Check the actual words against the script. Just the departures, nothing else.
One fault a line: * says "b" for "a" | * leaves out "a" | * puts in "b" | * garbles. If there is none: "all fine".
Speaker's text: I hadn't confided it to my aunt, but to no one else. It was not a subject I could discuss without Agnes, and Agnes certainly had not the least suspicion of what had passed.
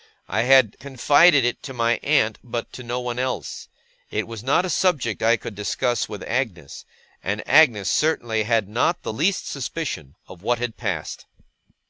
* says "had" for "hadn't"
* says "with" for "without"